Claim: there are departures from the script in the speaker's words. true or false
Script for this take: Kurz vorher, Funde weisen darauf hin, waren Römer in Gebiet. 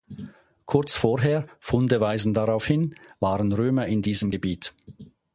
true